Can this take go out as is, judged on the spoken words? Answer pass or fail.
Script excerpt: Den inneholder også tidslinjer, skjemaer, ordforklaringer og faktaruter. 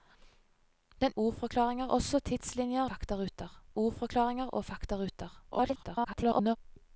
fail